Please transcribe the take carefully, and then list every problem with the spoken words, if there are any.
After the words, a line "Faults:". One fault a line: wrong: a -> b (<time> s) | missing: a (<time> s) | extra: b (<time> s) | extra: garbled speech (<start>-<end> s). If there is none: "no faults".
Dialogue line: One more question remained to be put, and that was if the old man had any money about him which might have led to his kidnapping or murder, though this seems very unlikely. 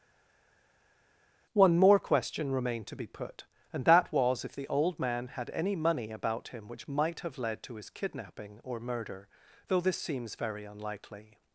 One more question remained to be put, and that was if the old man had any money about him which might have led to his kidnapping or murder, though this seems very unlikely.
Faults:
no faults